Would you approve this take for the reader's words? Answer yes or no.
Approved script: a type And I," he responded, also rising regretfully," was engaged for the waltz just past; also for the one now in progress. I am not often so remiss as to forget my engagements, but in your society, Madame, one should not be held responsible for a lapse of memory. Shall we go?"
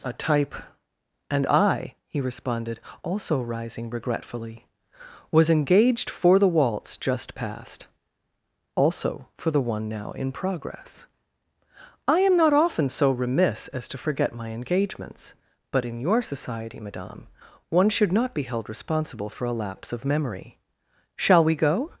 yes